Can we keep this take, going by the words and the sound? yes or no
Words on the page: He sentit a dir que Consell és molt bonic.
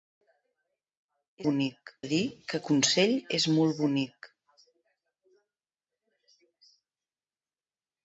no